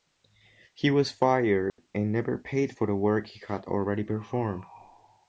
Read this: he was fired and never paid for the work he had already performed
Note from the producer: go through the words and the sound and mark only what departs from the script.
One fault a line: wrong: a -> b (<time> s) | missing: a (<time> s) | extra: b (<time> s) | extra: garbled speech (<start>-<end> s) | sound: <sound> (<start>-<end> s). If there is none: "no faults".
sound: dropout (1.7-1.8 s)